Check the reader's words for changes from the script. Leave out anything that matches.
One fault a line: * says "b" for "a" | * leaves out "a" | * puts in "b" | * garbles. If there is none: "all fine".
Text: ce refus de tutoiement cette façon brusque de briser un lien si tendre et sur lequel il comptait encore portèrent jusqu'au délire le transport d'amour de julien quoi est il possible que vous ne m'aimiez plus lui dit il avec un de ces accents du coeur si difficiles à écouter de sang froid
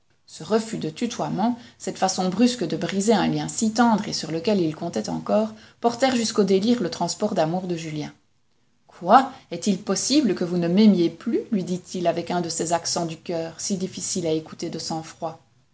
all fine